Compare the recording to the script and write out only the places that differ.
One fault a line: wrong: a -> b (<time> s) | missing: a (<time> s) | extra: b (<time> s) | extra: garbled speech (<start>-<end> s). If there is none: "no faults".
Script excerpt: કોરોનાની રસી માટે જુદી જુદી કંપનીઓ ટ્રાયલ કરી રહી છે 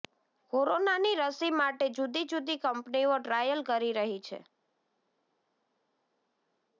no faults